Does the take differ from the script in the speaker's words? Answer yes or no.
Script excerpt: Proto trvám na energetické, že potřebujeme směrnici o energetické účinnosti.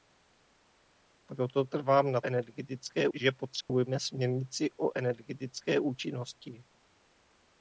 no